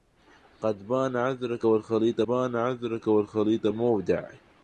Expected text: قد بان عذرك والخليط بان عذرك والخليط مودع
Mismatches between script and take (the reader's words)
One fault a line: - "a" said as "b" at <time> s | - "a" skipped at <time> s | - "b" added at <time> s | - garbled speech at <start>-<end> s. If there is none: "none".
none